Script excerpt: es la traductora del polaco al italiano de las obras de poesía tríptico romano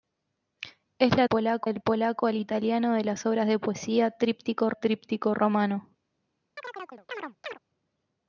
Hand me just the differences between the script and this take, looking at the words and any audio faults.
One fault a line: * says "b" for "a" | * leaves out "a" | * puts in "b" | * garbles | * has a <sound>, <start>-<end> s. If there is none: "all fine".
* says "polaco" for "traductora"
* puts in "tríptico"
* has a chirp, 6.6-7.6 s